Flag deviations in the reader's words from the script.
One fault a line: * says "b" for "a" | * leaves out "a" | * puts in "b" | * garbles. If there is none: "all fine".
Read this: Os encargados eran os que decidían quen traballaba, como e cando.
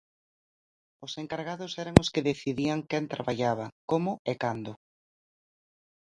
all fine